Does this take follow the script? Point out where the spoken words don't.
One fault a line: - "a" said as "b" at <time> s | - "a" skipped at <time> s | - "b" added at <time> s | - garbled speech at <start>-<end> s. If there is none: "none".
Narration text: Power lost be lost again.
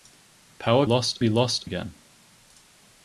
none